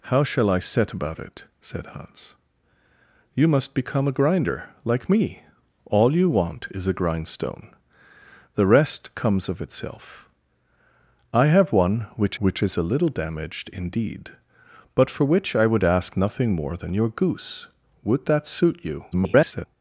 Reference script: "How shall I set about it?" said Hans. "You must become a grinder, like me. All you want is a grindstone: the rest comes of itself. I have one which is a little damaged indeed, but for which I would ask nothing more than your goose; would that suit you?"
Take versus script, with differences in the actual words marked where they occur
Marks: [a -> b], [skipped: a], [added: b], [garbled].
"How shall I set about it?" said Hans. "You must become a grinder, like me. All you want is a grindstone: the rest comes of itself. I have one which [added: which] is a little damaged indeed, but for which I would ask nothing more than your goose; would that suit you?" [garbled]